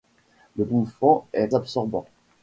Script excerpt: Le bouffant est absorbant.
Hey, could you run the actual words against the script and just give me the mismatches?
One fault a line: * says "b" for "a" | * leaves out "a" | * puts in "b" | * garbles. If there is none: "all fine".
all fine